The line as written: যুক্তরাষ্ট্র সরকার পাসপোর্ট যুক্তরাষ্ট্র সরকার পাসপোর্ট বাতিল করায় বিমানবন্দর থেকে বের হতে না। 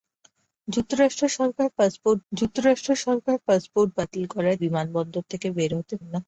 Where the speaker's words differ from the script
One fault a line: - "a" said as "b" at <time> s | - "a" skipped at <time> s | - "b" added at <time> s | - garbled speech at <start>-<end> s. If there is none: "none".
none